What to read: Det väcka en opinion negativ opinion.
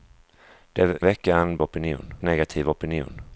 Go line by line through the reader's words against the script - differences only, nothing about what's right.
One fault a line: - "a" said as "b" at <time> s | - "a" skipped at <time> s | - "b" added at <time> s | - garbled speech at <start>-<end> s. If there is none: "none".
none